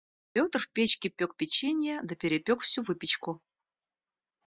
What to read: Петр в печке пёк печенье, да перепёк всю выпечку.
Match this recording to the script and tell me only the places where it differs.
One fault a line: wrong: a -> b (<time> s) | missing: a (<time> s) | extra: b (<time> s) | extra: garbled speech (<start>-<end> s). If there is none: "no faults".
no faults